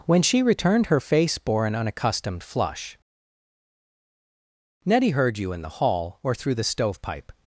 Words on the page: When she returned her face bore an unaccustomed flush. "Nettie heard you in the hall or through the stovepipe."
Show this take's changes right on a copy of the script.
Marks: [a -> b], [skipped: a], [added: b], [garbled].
When she returned her face bore an unaccustomed flush. "Nettie heard you in the hall or through the stovepipe."